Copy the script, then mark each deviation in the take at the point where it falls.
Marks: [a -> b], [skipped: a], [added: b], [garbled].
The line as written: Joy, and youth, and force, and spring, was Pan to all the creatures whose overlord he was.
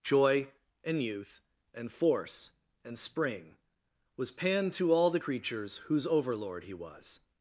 Joy, and youth, and force, and spring, was Pan to all the creatures whose overlord he was.